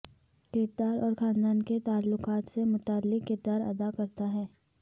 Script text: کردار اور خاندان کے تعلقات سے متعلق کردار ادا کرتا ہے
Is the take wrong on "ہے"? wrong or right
right